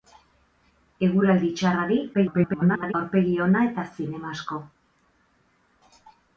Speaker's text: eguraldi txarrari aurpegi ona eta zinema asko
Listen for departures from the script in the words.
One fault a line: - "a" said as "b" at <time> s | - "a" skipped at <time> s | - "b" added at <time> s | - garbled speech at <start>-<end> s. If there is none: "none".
- garbled speech at 2.1-2.9 s